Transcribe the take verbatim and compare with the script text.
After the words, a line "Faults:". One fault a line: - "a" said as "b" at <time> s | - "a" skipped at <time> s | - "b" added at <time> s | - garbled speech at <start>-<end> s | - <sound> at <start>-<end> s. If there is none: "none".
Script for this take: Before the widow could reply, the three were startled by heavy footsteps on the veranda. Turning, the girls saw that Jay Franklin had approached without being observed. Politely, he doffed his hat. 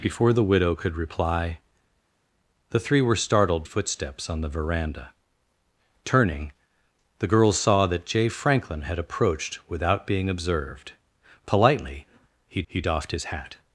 Before the widow could reply, the three were startled footsteps on the veranda. Turning, the girls saw that Jay Franklin had approached without being observed. Politely, he he doffed his hat.
Faults:
- "by heavy" skipped at 3.7 s
- "he" added at 12.7 s